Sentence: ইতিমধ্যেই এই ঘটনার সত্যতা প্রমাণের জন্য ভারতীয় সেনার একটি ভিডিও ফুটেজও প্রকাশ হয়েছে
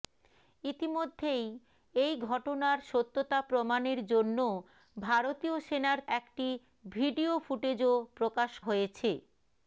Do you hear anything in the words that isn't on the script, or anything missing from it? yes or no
no